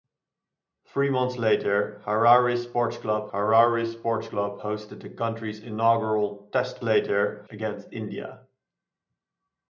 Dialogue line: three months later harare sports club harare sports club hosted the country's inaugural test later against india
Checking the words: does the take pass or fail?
pass